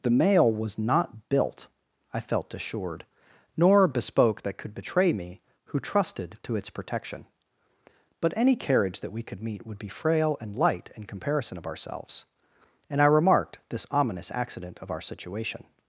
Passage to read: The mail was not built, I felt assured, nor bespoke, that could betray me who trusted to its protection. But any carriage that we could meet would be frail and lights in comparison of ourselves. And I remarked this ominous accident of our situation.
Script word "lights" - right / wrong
wrong